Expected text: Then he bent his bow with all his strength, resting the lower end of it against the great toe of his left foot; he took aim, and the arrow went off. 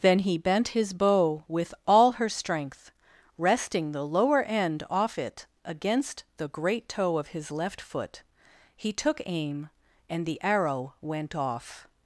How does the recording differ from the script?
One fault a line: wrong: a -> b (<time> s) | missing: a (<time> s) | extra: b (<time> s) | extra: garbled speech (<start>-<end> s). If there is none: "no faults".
wrong: his -> her (2.1 s)
wrong: of -> off (4.9 s)